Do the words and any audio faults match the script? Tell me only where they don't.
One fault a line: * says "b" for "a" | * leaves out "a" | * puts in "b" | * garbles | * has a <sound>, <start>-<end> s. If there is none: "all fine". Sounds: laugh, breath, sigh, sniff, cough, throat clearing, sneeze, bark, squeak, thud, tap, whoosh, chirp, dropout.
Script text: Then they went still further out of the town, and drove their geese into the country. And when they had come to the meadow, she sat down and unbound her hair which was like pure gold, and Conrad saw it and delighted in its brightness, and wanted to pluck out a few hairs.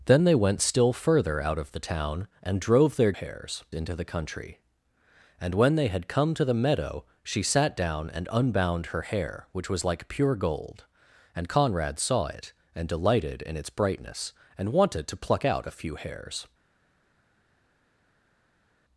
* says "hairs" for "geese"